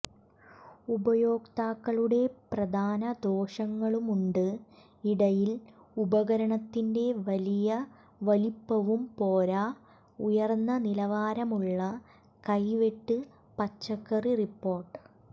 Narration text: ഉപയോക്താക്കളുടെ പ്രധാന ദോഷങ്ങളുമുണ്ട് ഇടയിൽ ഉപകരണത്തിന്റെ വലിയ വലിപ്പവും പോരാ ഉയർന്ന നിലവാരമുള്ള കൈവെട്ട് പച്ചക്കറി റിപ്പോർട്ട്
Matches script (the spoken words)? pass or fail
pass